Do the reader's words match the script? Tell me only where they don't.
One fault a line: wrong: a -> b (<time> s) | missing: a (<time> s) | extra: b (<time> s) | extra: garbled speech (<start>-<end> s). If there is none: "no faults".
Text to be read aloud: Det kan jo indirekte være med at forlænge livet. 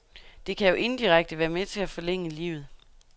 extra: til (1.6 s)